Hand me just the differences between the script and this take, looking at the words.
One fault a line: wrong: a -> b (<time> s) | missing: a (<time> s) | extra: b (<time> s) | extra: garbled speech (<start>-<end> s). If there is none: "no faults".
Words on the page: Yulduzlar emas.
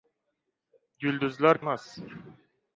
no faults